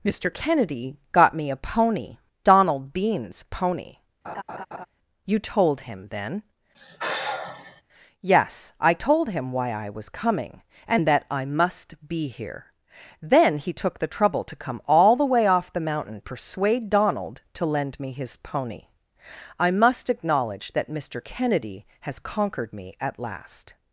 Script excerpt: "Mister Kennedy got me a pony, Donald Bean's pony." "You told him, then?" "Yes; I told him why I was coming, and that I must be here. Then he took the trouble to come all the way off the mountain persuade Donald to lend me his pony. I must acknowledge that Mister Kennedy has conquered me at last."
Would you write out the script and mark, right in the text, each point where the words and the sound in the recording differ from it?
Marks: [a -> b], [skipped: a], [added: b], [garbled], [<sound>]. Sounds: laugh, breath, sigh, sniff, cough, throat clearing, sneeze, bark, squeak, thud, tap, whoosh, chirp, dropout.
"Mister Kennedy got me a pony, Donald Bean's pony." [laugh] "You told him, then?" [sigh] "Yes; I told him why I was coming, and that I must be here. Then he took the trouble to come all the way off the mountain persuade Donald to lend me his pony. I must acknowledge that Mister Kennedy has conquered me at last."